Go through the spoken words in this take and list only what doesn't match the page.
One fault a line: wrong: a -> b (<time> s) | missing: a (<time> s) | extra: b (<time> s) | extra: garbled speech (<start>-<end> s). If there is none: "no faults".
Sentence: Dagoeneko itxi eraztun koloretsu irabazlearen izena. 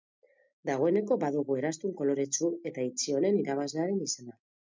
wrong: itxi -> badugu (1.2 s)
extra: eta itxi honen (2.7 s)